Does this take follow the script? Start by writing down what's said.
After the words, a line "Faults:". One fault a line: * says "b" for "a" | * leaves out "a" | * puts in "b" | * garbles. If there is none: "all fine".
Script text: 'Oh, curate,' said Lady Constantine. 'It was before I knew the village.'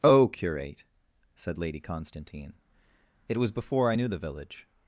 'Oh, curate,' said Lady Constantine. 'It was before I knew the village.'
Faults:
all fine